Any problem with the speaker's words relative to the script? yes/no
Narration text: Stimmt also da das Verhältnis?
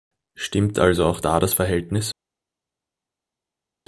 yes